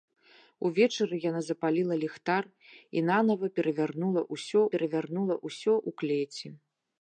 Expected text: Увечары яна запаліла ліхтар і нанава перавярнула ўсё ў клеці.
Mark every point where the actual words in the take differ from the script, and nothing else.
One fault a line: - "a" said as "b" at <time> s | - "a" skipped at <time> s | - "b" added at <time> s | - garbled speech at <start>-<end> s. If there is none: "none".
- "перавярнула ўсё" added at 4.7 s